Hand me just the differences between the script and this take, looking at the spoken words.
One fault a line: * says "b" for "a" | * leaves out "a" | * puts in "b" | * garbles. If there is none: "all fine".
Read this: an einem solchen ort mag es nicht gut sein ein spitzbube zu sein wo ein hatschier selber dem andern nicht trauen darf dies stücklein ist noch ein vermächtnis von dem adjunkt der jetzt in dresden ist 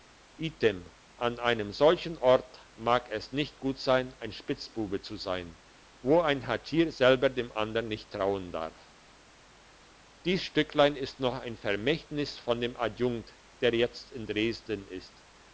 all fine